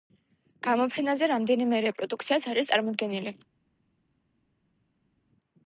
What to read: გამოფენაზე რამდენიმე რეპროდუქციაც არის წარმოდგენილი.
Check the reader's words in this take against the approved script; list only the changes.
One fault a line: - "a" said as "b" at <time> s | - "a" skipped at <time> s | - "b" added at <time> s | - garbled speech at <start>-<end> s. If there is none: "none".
none